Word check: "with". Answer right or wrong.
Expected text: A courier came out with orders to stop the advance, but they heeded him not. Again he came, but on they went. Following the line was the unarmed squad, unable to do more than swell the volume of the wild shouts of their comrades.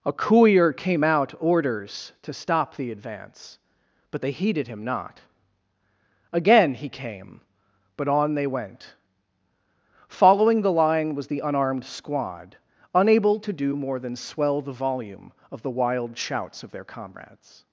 wrong